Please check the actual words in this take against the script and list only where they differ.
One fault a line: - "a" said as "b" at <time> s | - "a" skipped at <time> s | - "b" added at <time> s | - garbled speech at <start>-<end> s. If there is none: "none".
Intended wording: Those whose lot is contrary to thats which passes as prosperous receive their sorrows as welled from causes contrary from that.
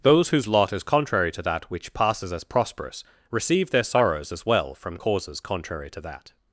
- "thats" said as "that" at 1.4 s
- "welled" said as "well" at 4.5 s
- "from" said as "to" at 5.9 s